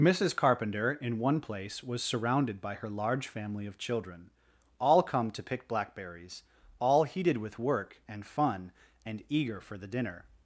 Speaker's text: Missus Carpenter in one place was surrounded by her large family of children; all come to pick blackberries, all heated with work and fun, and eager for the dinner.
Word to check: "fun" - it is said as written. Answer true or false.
true